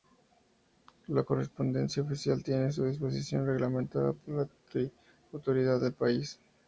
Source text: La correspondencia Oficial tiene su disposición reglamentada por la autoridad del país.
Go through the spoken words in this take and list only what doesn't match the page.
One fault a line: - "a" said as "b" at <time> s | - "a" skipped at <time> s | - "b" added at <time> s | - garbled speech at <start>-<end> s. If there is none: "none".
none